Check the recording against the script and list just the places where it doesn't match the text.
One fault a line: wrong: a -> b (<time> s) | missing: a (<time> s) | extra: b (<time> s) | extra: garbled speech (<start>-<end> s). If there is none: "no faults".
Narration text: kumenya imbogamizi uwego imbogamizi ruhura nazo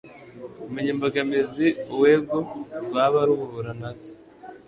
wrong: imbogamizi -> rwaba (2.9 s)